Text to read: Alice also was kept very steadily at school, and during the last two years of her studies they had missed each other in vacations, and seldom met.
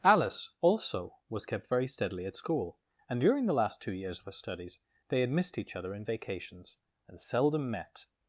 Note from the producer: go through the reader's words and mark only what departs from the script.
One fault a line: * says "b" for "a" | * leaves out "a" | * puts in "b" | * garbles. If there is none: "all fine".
all fine